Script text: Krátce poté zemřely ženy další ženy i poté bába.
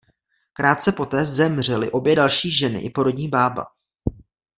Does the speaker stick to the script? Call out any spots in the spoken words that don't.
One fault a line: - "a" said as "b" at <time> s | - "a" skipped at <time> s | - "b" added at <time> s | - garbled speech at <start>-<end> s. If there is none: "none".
- "ženy" said as "obě" at 1.9 s
- "poté" said as "porodní" at 2.9 s